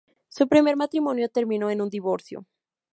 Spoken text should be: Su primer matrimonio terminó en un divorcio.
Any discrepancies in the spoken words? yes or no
no